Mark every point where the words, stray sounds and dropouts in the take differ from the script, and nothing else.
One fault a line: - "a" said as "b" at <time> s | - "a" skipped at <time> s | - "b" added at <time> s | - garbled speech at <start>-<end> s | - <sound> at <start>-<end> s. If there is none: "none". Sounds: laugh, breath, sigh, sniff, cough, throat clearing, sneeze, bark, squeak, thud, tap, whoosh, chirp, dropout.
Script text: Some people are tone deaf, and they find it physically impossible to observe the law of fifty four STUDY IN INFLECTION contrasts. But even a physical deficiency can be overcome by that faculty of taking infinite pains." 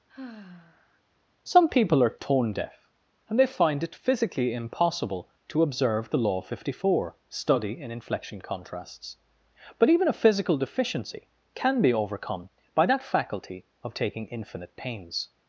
- sigh at 0.1-1.0 s